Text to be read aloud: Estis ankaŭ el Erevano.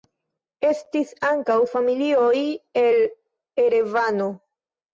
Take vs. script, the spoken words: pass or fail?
fail